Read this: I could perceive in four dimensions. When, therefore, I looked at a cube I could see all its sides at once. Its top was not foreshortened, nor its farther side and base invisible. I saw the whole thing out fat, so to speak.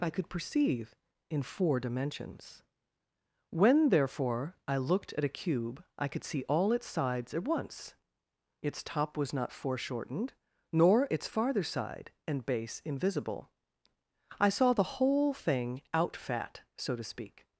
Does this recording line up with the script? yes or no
yes